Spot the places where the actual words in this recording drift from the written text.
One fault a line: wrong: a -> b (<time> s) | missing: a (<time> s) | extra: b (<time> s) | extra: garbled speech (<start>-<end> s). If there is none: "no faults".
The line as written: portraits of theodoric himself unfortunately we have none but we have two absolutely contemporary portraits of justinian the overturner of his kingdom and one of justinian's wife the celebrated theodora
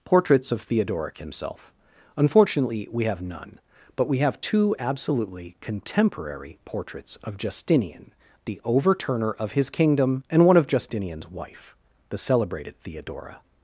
no faults